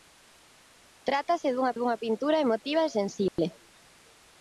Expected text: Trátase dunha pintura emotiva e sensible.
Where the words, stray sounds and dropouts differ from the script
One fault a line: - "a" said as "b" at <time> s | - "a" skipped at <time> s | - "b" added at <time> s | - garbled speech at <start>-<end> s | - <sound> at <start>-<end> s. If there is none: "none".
- "dunha" added at 1.7 s
- dropout at 3.3-3.4 s